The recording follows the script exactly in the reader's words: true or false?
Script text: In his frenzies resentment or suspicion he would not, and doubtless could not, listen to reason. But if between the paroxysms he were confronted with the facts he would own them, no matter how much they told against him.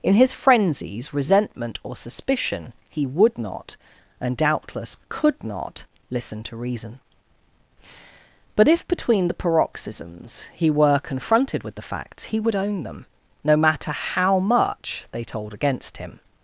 true